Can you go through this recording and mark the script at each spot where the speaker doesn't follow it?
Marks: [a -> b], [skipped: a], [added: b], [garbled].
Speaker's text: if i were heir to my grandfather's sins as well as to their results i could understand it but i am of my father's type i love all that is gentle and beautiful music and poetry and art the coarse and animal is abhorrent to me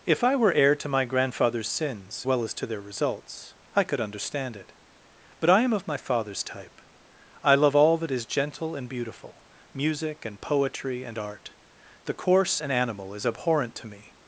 if i were heir to my grandfather's sins [skipped: as] well as to their results i could understand it but i am of my father's type i love all that is gentle and beautiful music and poetry and art the coarse and animal is abhorrent to me